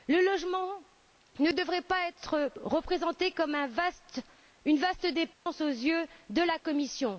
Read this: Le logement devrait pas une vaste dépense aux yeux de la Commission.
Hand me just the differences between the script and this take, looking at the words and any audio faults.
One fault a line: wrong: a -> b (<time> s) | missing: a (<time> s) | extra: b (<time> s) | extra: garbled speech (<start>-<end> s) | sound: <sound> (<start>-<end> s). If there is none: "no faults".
extra: ne (1.4 s)
extra: être représenté comme (2.1 s)
sound: dropout (5.3-5.5 s)